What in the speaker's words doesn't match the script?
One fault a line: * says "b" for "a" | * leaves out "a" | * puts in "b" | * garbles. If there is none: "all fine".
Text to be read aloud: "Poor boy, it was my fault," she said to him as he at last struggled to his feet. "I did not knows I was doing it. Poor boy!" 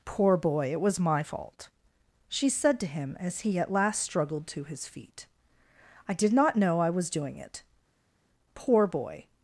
* says "know" for "knows"